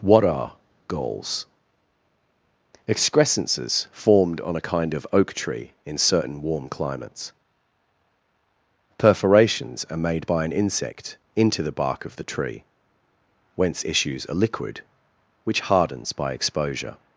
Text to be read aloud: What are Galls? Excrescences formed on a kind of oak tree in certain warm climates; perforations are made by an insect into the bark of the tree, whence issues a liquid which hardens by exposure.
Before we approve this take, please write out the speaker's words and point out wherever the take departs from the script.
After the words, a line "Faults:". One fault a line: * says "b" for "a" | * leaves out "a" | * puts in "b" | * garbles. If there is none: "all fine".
What are Galls? Excrescences formed on a kind of oak tree in certain warm climates; perforations are made by an insect into the bark of the tree, whence issues a liquid which hardens by exposure.
Faults:
all fine